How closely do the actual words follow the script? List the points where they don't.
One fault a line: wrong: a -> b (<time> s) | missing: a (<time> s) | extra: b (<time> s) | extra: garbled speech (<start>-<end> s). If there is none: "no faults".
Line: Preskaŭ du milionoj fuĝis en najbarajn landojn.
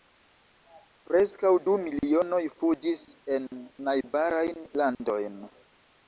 no faults